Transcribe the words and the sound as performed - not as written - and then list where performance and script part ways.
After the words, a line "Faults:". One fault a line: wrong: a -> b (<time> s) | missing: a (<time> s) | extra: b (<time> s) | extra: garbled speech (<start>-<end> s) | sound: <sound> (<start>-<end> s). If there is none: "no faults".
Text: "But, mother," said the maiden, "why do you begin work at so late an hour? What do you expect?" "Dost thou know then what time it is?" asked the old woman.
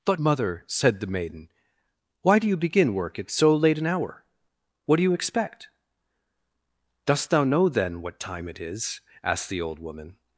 "But, mother," said the maiden, "why do you begin work at so late an hour? What do you expect?" "Dost thou know then what time it is?" asked the old woman.
Faults:
no faults